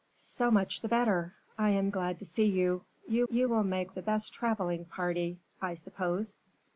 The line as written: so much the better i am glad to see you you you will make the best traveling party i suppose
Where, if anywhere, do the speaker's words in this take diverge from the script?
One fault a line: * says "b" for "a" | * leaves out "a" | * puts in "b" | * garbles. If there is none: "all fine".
all fine